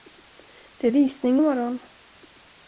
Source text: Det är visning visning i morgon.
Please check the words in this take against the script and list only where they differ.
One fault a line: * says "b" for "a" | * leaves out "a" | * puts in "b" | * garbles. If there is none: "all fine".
* leaves out "visning"